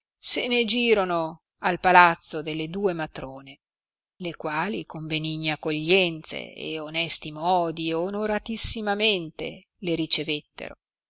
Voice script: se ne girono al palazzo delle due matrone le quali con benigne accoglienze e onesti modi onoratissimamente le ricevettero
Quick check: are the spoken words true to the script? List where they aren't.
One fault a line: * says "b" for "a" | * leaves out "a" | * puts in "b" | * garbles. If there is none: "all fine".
all fine